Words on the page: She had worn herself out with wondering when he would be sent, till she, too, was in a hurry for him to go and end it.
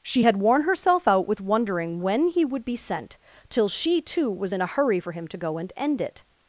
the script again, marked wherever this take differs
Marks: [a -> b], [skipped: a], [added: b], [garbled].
She had worn herself out with wondering when he would be sent, till she, too, was in a hurry for him to go and end it.